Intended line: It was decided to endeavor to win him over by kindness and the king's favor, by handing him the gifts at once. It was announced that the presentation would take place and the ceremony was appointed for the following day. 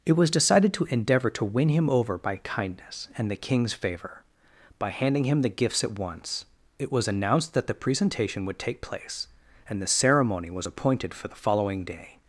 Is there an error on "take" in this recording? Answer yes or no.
no